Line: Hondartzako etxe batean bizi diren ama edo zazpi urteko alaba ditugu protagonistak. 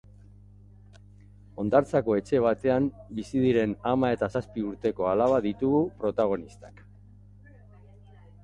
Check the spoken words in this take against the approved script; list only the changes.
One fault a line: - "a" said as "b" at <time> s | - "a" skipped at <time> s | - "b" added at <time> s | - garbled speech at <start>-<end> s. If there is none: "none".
- "edo" said as "eta" at 4.2 s